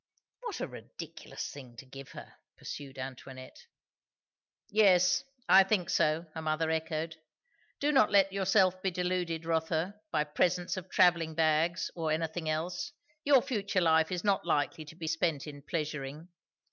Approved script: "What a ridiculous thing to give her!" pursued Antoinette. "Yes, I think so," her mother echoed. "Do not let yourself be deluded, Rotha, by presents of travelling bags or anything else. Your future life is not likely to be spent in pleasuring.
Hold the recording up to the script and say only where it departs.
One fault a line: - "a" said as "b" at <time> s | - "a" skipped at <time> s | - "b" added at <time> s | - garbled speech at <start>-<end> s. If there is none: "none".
none